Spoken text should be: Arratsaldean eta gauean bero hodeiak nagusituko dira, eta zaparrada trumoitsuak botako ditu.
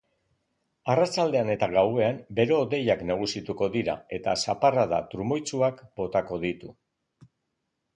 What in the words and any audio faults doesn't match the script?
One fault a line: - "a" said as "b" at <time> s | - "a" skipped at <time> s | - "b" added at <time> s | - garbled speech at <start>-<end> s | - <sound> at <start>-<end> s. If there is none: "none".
none